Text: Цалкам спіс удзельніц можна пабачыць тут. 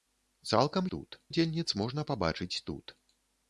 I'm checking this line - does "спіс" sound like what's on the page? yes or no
no